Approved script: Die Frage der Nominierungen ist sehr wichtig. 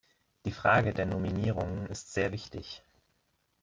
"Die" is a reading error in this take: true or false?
false